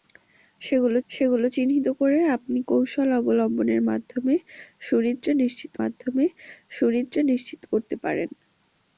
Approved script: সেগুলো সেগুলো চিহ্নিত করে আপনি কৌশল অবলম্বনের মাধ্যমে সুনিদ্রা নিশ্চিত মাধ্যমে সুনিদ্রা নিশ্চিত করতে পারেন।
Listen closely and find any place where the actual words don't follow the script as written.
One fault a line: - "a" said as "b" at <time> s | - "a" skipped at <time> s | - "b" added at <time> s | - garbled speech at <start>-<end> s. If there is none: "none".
none